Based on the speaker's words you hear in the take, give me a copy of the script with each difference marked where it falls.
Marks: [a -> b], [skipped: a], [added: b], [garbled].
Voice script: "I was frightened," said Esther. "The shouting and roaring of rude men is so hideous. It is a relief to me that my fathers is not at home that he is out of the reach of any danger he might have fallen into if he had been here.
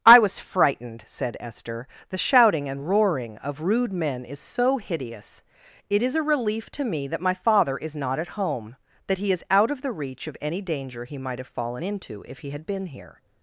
"I was frightened," said Esther. "The shouting and roaring of rude men is so hideous. It is a relief to me that my [fathers -> father] is not at home that he is out of the reach of any danger he might have fallen into if he had been here.